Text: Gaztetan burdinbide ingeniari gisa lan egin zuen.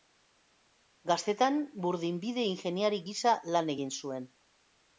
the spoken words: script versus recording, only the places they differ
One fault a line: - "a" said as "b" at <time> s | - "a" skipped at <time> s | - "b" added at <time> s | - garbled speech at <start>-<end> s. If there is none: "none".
none